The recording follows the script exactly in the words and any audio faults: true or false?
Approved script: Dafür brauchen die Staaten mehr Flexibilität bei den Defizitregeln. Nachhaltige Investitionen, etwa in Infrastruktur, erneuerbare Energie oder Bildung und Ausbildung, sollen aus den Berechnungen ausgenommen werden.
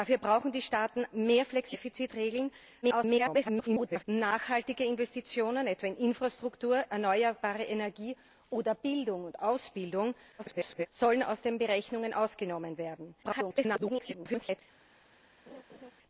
false